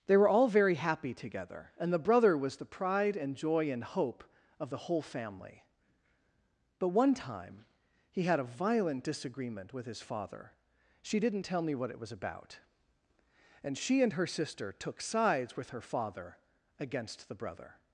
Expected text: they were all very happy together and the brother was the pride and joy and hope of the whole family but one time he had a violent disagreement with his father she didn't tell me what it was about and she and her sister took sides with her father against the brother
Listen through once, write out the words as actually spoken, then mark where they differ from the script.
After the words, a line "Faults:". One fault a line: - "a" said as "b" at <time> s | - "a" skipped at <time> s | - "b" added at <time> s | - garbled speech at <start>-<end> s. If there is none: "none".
they were all very happy together and the brother was the pride and joy and hope of the whole family but one time he had a violent disagreement with his father she didn't tell me what it was about and she and her sister took sides with her father against the brother
Faults:
none